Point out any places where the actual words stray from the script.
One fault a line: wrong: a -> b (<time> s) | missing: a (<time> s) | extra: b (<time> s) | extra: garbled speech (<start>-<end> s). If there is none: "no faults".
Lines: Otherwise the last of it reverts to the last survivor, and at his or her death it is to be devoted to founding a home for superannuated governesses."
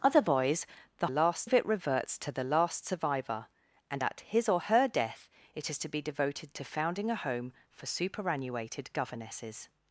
no faults